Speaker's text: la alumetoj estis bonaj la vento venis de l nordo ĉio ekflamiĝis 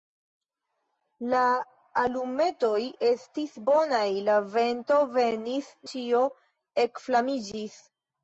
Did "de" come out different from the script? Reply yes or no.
yes